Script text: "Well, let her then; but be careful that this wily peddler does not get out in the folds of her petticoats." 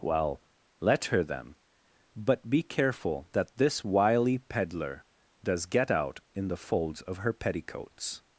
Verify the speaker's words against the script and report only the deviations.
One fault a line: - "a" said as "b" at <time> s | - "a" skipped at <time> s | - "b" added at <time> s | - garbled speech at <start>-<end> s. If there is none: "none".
- "not" skipped at 5.7 s